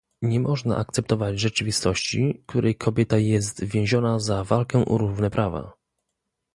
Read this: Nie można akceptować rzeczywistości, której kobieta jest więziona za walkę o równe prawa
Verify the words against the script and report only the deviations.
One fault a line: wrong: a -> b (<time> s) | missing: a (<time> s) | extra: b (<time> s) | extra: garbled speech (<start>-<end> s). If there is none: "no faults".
no faults